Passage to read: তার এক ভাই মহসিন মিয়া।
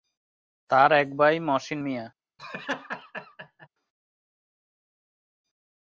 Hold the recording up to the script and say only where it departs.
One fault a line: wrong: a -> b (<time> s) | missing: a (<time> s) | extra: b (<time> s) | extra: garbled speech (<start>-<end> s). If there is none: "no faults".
no faults